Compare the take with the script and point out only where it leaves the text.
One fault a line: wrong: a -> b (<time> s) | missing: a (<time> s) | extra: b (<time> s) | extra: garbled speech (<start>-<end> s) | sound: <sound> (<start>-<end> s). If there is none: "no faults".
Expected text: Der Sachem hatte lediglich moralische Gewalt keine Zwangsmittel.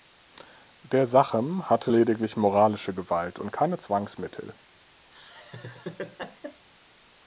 extra: und (3.4 s)
sound: laugh (5.1-6.7 s)